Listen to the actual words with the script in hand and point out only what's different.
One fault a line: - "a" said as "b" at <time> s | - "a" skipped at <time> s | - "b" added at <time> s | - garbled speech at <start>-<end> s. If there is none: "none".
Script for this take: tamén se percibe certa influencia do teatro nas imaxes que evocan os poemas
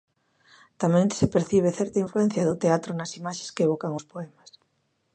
none